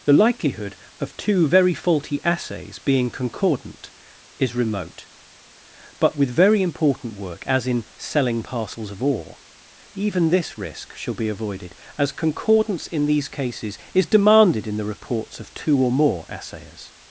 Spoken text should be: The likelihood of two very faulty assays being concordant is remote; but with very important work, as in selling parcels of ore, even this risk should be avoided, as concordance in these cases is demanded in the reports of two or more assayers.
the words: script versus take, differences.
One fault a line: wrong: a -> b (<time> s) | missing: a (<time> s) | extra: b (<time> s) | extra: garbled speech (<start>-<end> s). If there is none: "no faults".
wrong: should -> shall (10.9 s)